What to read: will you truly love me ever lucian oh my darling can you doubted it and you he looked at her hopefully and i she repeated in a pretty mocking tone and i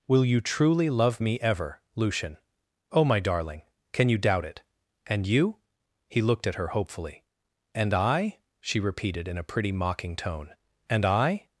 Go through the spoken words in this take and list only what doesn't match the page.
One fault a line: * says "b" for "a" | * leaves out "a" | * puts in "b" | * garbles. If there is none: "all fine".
* says "doubt" for "doubted"